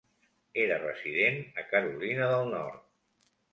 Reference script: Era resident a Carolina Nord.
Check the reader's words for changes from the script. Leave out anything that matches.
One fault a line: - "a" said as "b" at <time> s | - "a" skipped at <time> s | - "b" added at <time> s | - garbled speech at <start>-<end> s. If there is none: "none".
- "del" added at 2.4 s